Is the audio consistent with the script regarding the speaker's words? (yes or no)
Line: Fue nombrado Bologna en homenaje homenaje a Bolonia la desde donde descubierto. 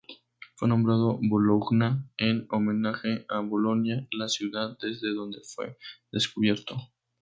no